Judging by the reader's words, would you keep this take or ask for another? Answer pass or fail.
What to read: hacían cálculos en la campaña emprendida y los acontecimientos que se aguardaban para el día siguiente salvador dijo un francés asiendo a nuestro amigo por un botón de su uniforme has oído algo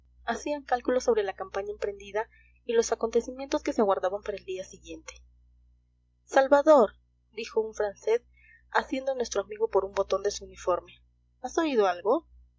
fail